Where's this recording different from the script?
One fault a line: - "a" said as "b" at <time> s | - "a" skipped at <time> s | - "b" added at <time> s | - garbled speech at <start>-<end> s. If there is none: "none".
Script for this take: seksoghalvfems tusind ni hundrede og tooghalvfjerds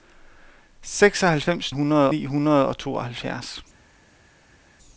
- "tusind" said as "hundrede" at 1.7 s